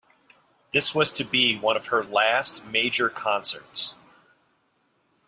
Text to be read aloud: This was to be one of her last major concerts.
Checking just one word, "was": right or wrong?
right